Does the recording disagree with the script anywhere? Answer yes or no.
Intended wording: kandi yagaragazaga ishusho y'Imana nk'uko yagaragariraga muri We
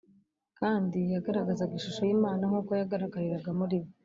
no